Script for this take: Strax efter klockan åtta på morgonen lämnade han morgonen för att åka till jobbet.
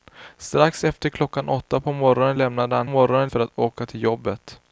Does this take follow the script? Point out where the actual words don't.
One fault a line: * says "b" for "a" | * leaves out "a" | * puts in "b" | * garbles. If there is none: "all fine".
all fine